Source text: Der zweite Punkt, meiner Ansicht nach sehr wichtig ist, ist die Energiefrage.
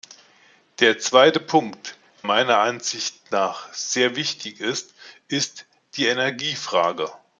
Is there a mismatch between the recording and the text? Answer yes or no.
no